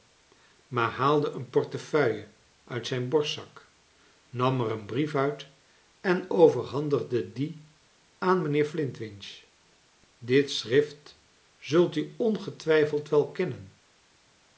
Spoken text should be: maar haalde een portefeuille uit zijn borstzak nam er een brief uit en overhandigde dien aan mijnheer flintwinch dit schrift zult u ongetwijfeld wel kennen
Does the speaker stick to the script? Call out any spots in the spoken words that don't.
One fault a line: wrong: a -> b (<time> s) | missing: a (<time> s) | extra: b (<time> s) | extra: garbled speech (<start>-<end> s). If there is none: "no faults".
no faults